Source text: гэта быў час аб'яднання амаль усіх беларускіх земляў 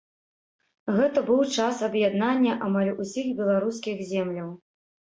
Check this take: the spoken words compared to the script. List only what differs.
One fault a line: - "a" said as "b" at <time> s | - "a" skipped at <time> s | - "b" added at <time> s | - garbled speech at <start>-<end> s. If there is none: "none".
none